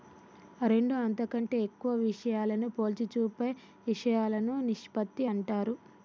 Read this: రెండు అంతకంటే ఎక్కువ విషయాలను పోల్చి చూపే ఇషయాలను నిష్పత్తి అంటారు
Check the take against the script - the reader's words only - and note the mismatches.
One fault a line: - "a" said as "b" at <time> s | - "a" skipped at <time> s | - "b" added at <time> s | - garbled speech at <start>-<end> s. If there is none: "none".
none